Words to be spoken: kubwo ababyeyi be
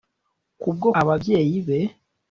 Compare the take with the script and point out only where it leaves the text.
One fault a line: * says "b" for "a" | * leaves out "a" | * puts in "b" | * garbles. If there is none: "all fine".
all fine